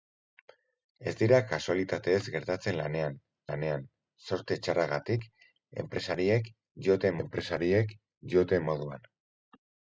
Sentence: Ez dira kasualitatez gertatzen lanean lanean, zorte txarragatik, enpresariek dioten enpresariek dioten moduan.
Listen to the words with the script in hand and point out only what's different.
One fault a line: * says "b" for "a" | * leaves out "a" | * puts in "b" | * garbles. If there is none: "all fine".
all fine